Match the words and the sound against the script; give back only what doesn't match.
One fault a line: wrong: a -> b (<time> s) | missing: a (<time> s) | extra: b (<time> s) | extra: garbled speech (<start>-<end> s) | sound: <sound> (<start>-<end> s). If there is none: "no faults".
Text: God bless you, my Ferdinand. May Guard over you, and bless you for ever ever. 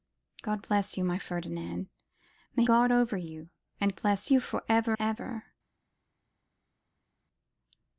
no faults